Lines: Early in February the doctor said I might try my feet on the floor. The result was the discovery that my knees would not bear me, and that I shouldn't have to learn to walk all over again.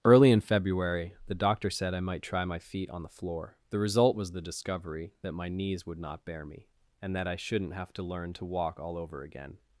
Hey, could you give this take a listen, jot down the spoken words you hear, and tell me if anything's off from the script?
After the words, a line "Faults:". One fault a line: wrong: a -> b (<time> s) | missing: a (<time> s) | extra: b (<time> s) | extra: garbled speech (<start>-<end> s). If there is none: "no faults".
Early in February the doctor said I might try my feet on the floor. The result was the discovery that my knees would not bear me, and that I shouldn't have to learn to walk all over again.
Faults:
no faults